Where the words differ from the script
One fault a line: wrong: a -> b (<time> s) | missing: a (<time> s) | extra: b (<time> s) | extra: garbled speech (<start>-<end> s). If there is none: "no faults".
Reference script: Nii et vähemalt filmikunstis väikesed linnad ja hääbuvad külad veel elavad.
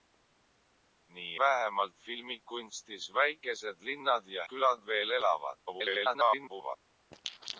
missing: et (1.4 s)
missing: hääbuvad (4.4 s)
extra: garbled speech (5.7-6.8 s)